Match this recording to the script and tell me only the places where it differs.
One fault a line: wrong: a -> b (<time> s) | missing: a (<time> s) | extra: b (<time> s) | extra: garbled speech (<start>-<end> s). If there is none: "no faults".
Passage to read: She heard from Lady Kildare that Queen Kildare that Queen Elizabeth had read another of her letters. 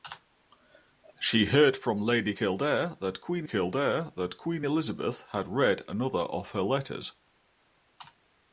no faults